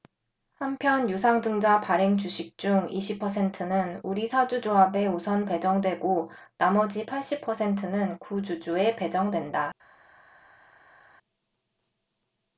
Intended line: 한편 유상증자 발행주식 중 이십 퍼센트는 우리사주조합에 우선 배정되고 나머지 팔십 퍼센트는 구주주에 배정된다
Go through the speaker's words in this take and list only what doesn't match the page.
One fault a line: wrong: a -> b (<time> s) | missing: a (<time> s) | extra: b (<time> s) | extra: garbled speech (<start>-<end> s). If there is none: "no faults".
no faults